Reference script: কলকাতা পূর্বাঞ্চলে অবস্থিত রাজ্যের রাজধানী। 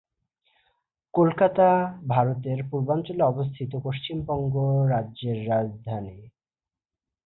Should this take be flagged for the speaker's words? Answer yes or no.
yes